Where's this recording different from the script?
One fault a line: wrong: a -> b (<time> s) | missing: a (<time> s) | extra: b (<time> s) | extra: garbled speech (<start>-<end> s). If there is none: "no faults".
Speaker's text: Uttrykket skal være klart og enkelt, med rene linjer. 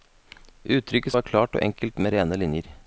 missing: skal (1.1 s)